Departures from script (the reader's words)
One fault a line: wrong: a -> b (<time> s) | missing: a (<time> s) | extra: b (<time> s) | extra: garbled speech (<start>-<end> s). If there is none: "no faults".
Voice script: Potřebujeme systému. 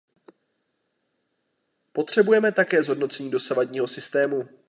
extra: také zhodnocení dosavadního (2.5 s)